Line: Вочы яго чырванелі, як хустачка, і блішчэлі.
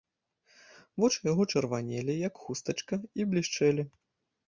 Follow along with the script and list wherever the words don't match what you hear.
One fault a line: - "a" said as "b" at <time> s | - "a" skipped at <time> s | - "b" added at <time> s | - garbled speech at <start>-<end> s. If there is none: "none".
none